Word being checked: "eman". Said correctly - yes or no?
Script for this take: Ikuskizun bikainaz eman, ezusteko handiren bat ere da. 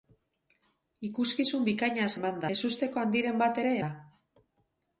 yes